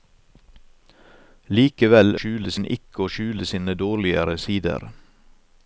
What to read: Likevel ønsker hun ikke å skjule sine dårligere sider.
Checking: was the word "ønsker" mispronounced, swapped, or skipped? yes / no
yes